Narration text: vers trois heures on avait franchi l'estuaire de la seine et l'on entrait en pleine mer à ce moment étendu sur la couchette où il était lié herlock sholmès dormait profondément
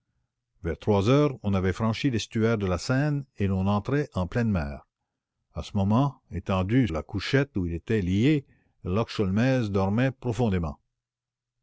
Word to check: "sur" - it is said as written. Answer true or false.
false